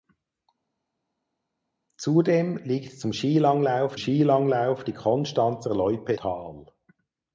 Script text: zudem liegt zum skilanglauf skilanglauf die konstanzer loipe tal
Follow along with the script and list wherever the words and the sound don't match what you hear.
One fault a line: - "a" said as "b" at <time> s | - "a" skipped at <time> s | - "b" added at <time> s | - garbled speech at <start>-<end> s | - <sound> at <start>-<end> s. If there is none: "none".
none